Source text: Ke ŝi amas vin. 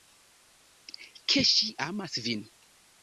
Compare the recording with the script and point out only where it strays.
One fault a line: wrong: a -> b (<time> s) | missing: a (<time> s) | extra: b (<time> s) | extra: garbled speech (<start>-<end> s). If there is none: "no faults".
no faults